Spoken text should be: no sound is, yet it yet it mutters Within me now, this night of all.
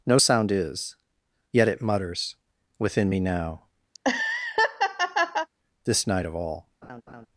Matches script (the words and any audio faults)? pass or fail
fail